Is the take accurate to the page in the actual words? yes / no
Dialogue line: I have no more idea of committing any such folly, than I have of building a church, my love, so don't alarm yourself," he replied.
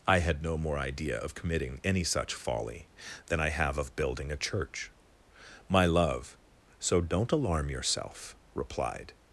no